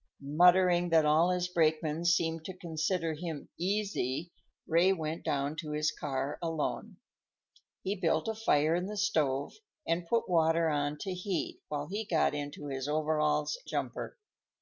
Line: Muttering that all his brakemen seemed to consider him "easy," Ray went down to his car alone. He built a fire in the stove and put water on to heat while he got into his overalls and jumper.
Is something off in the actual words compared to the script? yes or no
yes